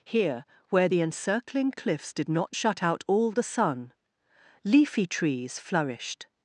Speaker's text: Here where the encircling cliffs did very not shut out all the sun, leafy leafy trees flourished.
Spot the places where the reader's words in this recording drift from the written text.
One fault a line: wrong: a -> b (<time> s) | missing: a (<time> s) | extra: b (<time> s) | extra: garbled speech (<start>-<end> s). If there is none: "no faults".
missing: very (2.3 s)
missing: leafy (5.1 s)